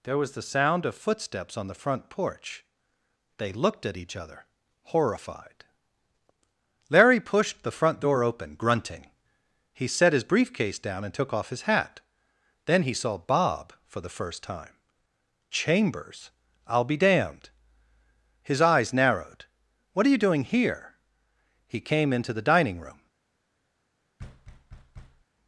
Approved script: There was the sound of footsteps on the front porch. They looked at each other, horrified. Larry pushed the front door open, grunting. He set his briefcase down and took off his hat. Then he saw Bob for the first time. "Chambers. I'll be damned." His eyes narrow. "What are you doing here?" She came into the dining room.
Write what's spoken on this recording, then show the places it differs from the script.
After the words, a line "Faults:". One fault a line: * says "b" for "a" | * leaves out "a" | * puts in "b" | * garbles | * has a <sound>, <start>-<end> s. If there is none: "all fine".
There was the sound of footsteps on the front porch. They looked at each other, horrified. Larry pushed the front door open, grunting. He set his briefcase down and took off his hat. Then he saw Bob for the first time. "Chambers. I'll be damned." His eyes narrowed. "What are you doing here?" He came into the dining room.
Faults:
* says "narrowed" for "narrow"
* says "He" for "She"
* has a thud, 24.2-25.2 s